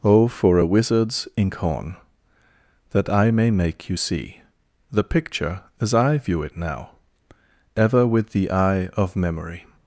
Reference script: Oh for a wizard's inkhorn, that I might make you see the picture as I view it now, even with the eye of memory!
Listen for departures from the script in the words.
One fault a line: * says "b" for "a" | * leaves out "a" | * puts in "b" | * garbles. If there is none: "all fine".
* says "may" for "might"
* says "ever" for "even"